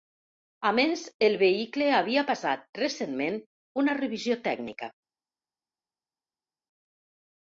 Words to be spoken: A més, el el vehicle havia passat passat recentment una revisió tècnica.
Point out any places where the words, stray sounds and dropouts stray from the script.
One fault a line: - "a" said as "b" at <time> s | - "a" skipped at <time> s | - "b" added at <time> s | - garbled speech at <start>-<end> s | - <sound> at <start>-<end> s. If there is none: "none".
- "el" skipped at 1.4 s
- "passat" skipped at 2.7 s